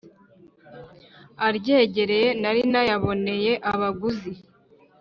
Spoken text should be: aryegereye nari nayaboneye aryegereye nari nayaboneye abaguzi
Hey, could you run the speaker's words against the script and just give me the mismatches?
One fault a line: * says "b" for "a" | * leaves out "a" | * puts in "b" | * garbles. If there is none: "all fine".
* leaves out "aryegereye nari nayaboneye"